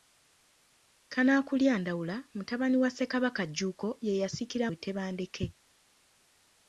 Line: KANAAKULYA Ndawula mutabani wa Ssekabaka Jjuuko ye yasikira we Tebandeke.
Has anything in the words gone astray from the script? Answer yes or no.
no